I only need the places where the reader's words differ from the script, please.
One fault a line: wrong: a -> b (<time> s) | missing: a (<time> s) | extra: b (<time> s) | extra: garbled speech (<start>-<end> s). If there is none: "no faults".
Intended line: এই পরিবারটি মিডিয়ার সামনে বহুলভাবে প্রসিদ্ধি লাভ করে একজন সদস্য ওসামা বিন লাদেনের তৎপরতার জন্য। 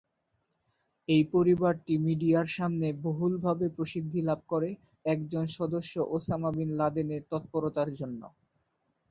no faults